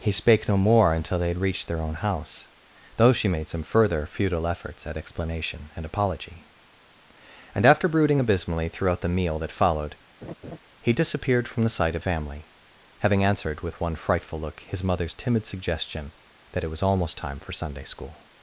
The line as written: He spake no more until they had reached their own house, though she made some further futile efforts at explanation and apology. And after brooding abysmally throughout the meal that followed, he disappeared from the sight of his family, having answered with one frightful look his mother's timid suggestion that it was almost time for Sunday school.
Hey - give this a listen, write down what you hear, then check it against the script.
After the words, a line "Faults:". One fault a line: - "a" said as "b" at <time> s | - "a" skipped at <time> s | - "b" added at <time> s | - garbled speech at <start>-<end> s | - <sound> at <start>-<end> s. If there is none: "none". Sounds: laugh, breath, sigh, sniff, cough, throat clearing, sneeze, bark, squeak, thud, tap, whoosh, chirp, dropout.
He spake no more until they had reached their own house, though she made some further futile efforts at explanation and apology. And after brooding abysmally throughout the meal that followed, he disappeared from the sight of family, having answered with one frightful look his mother's timid suggestion that it was almost time for Sunday school.
Faults:
- laugh at 10.2-10.6 s
- "his" skipped at 12.0 s